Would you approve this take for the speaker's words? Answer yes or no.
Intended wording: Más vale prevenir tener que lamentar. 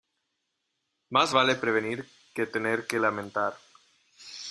no